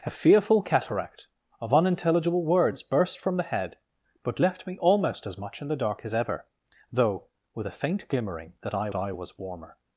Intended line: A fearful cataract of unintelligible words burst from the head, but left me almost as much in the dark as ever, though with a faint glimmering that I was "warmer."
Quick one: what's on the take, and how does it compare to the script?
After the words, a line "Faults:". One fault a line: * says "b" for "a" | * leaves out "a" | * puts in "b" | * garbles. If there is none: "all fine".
A fearful cataract of unintelligible words burst from the head, but left me almost as much in the dark as ever, though with a faint glimmering that I I was "warmer."
Faults:
* puts in "I"